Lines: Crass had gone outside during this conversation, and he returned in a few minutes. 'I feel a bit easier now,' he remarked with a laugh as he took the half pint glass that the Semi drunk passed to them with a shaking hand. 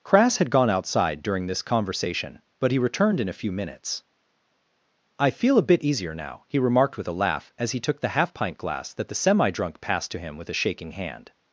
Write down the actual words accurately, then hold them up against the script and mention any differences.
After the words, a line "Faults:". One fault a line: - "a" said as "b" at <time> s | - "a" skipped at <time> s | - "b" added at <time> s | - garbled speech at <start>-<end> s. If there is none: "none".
Crass had gone outside during this conversation, but he returned in a few minutes. 'I feel a bit easier now,' he remarked with a laugh as he took the half pint glass that the Semi drunk passed to him with a shaking hand.
Faults:
- "and" said as "but" at 2.6 s
- "them" said as "him" at 10.2 s